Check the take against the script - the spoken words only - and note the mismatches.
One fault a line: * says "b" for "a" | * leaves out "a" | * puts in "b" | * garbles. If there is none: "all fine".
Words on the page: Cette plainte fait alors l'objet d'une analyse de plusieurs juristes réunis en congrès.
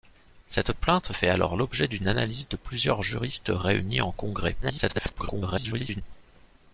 * garbles